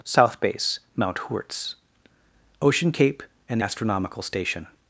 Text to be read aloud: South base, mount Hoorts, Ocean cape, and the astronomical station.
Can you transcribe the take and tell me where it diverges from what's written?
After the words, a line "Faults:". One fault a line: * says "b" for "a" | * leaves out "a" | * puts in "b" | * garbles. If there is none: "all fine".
South base, mount Hoorts, Ocean cape, and astronomical station.
Faults:
* leaves out "the"